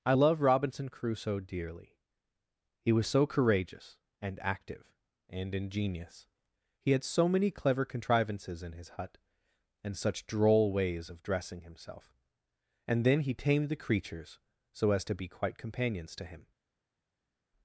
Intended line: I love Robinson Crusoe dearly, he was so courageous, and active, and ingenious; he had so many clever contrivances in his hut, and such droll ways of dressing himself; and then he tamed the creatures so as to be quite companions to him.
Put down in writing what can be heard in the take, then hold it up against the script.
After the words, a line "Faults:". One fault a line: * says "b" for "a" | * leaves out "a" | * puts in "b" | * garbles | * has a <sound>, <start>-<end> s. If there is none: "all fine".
I love Robinson Crusoe dearly, he was so courageous, and active, and ingenious; he had so many clever contrivances in his hut, and such droll ways of dressing himself; and then he tamed the creatures so as to be quite companions to him.
Faults:
all fine